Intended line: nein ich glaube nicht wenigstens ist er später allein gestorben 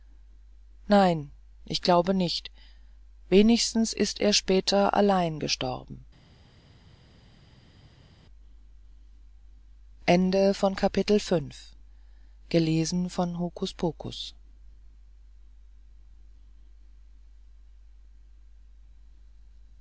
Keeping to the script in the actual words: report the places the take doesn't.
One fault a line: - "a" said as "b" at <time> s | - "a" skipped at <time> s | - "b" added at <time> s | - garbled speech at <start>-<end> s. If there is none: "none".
none